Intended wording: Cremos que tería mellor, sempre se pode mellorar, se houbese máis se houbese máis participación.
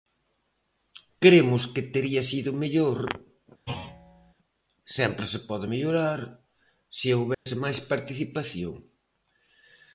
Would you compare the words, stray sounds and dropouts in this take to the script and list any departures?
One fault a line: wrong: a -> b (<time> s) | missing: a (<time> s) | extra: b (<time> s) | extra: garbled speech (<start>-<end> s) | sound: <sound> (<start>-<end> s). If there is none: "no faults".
extra: sido (2.3 s)
sound: thud (3.7-4.3 s)
sound: dropout (7.3-7.5 s)
missing: se houbese máis (7.8 s)